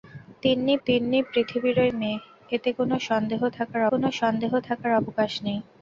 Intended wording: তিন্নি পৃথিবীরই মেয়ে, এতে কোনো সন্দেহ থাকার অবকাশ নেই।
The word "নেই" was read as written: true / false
true